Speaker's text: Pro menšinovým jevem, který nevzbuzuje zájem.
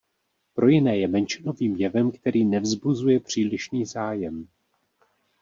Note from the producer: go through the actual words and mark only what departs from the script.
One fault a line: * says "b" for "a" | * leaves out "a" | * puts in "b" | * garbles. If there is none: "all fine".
* puts in "jiné je"
* puts in "přílišný"